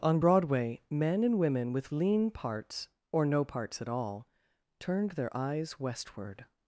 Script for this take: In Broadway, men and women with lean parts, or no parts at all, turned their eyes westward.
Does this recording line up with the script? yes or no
no